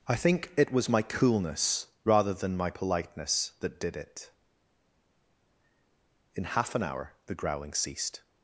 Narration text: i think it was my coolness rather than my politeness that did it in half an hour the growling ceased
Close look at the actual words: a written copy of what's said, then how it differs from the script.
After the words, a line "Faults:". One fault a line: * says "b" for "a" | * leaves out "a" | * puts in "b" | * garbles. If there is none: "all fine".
i think it was my coolness rather than my politeness that did it in half an hour the growling ceased
Faults:
all fine